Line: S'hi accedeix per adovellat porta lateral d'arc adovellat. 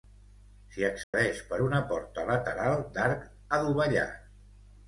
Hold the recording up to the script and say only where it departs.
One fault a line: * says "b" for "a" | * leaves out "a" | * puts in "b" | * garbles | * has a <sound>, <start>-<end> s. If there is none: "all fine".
* has a dropout, 1.0-1.1 s
* says "una" for "adovellat"